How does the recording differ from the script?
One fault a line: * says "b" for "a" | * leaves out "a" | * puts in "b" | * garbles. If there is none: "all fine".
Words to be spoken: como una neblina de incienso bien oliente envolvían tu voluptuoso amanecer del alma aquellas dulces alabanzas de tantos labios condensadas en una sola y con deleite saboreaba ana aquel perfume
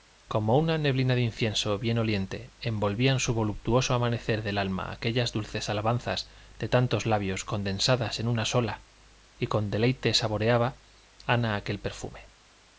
* says "su" for "tu"